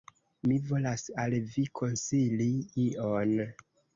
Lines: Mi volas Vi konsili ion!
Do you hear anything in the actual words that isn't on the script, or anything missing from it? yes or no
yes